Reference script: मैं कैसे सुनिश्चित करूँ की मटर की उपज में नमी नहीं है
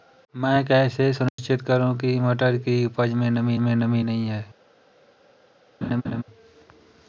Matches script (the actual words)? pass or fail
fail